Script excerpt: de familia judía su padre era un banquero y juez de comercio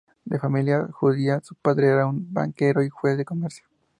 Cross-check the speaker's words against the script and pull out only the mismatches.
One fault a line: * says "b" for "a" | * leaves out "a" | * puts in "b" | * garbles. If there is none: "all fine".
all fine